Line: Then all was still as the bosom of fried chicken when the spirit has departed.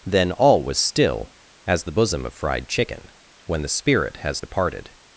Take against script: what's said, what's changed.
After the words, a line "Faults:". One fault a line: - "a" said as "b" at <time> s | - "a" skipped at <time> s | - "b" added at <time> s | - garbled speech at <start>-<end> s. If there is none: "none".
Then all was still as the bosom of fried chicken when the spirit has departed.
Faults:
none